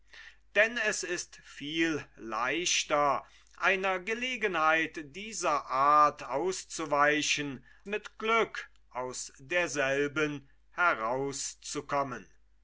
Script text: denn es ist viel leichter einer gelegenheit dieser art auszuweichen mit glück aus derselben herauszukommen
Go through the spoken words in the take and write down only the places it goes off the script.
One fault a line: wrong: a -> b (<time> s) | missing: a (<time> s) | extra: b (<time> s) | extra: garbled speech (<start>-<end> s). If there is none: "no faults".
no faults